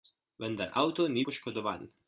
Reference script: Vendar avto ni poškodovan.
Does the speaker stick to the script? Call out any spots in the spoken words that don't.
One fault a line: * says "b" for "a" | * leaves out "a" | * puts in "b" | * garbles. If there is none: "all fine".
all fine